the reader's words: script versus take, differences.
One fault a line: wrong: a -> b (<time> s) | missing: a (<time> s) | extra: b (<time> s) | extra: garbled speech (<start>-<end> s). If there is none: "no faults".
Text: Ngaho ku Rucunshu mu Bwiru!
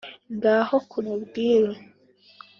missing: Rucunshu (1.0 s)